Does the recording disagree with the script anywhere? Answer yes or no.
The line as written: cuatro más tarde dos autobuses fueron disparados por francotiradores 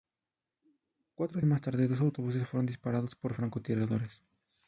no